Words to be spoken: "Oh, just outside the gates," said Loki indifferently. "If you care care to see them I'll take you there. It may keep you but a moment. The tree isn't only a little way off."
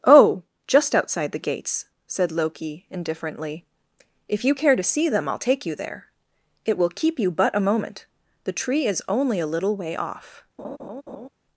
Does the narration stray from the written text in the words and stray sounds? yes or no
yes